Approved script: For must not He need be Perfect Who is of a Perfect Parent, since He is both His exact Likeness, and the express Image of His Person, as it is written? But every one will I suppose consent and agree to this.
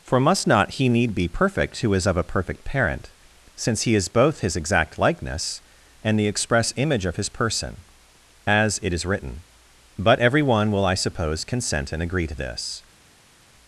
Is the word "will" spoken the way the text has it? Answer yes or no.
yes